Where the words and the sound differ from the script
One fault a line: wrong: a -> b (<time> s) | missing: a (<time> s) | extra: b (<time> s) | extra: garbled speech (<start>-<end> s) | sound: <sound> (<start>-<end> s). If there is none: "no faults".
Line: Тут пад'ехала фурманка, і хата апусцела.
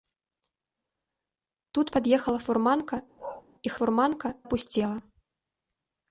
sound: bark (3.2-3.4 s)
wrong: хата -> фурманка (3.8 s)